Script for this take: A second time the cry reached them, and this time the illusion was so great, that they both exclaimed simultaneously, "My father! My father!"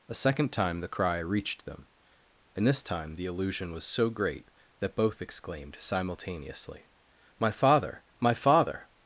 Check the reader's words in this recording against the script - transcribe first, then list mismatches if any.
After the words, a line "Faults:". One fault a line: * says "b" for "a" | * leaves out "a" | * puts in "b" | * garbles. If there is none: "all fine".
A second time the cry reached them, and this time the illusion was so great, that both exclaimed simultaneously, "My father! My father!"
Faults:
* leaves out "they"